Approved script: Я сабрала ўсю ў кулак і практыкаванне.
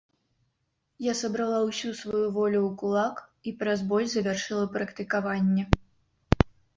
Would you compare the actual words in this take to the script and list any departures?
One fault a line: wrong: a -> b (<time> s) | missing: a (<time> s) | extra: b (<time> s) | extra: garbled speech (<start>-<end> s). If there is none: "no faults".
extra: сваю волю (2.0 s)
extra: праз боль завяршыла (3.6 s)